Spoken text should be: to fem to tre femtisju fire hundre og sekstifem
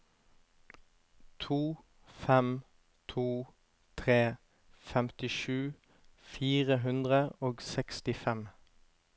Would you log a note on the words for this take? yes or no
no